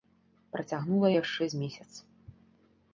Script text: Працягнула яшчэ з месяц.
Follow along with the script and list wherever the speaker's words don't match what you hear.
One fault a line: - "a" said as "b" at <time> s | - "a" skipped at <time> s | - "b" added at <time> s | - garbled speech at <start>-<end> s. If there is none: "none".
none